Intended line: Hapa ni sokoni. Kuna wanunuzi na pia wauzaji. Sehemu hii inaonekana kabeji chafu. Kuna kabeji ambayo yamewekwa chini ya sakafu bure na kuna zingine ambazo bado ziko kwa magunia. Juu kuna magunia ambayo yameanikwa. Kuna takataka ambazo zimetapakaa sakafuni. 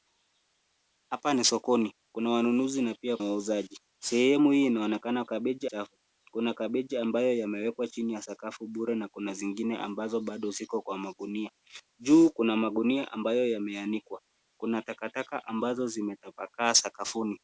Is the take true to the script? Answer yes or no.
yes